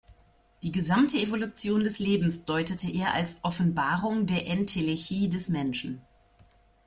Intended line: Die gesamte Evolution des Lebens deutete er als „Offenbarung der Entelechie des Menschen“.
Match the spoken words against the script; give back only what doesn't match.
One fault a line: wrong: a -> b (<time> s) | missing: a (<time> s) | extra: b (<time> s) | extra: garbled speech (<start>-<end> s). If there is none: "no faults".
no faults